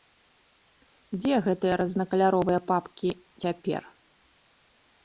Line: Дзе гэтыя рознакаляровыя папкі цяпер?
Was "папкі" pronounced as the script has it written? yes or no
yes